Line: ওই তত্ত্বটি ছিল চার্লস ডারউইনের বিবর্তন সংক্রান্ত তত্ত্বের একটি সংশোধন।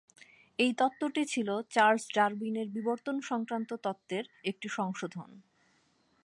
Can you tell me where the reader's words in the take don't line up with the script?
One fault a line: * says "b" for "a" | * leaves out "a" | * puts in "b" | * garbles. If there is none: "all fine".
* says "এই" for "ওই"